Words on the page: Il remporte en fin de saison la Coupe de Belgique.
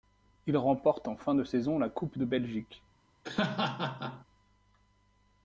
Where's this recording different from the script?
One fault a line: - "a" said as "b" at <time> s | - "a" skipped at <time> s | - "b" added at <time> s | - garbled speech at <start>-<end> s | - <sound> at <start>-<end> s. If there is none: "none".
- laugh at 3.2-4.3 s